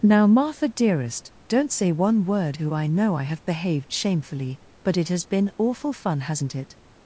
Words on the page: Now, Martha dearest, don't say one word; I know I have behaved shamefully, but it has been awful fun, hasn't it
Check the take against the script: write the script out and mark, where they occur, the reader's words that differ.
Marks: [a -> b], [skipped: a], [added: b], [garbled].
Now, Martha dearest, don't say one word; [added: who] I know I have behaved shamefully, but it has been awful fun, hasn't it